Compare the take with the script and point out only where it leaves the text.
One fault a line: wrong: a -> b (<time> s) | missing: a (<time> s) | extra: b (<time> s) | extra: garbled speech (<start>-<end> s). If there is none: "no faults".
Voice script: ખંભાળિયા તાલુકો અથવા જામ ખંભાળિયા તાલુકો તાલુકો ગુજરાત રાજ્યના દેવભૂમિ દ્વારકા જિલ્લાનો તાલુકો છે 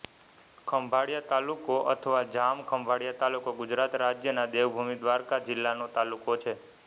missing: તાલુકો (3.5 s)